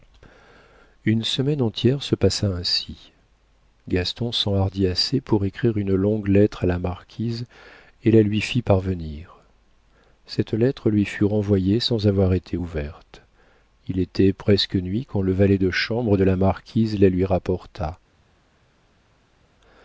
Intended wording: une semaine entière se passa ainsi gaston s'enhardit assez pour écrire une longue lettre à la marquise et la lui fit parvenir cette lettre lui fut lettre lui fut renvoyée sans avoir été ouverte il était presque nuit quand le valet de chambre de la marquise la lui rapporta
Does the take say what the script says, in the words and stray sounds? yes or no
no